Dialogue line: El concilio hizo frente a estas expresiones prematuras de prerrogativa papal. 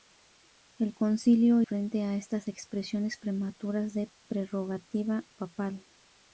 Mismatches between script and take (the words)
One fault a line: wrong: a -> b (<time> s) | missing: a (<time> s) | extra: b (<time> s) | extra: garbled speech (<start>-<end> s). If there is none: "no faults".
missing: hizo (1.6 s)